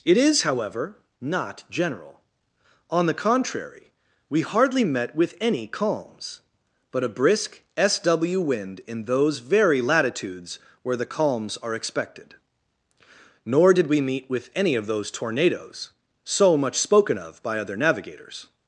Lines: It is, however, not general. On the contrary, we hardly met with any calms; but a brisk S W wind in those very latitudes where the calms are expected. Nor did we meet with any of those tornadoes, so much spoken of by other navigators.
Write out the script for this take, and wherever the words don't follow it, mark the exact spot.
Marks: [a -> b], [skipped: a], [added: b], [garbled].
It is, however, not general. On the contrary, we hardly met with any calms; but a brisk S W wind in those very latitudes where the calms are expected. Nor did we meet with any of those tornadoes, so much spoken of by other navigators.